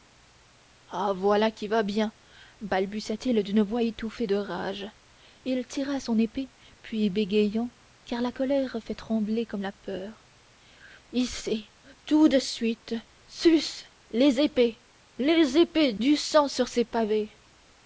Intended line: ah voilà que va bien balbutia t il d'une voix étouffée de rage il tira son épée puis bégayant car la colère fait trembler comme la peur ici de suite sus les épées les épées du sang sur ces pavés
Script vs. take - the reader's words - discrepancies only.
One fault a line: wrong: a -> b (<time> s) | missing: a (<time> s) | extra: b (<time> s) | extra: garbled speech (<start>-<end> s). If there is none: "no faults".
wrong: que -> qui (1.5 s)
extra: tout (12.0 s)